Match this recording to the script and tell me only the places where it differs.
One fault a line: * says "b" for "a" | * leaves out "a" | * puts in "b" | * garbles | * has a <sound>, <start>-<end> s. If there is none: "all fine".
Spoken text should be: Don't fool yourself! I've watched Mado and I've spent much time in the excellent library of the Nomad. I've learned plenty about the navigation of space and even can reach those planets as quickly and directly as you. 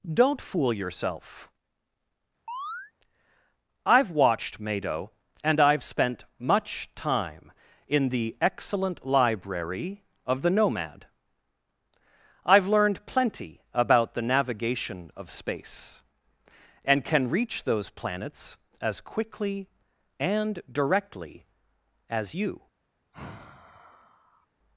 * has a chirp, 2.5-2.9 s
* leaves out "even"
* has a sigh, 23.1-24.5 s